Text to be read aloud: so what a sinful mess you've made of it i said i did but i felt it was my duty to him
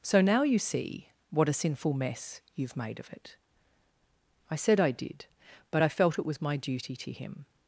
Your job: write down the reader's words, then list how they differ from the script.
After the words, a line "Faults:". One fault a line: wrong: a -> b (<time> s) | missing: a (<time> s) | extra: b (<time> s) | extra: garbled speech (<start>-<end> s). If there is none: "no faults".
so now you see what a sinful mess you've made of it i said i did but i felt it was my duty to him
Faults:
extra: now you see (0.2 s)